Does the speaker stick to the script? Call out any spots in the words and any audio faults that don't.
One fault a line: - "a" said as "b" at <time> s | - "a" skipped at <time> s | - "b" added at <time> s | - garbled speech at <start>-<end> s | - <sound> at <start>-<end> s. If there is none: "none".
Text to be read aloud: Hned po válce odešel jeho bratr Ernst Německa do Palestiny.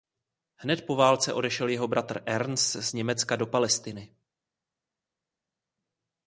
- "z" added at 2.8 s